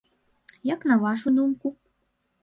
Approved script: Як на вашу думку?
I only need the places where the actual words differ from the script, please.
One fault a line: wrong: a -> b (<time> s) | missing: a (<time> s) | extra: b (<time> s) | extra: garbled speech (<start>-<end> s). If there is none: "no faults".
no faults